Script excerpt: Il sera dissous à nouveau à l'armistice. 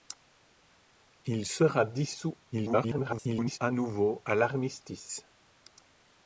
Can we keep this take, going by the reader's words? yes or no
no